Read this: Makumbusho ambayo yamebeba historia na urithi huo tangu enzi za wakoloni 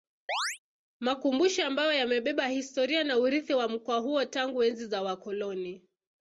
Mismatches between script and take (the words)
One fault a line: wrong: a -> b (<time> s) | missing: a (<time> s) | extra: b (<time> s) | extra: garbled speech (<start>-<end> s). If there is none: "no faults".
extra: wa mkoa (3.5 s)